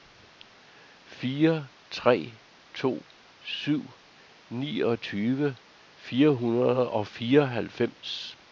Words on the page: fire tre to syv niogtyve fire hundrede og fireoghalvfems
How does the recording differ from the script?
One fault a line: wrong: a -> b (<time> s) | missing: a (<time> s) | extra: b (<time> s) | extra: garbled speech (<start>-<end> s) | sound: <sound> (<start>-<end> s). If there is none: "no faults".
no faults